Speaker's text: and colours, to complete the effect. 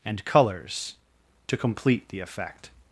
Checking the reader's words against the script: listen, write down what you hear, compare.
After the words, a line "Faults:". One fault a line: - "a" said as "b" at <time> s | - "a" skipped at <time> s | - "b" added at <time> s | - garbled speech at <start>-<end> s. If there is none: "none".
and colours, to complete the effect.
Faults:
none